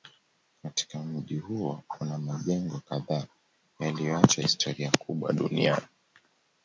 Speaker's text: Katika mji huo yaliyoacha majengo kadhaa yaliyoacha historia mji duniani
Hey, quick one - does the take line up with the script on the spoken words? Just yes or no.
no